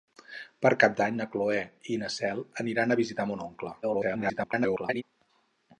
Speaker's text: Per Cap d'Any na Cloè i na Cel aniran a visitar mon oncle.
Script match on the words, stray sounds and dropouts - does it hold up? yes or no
no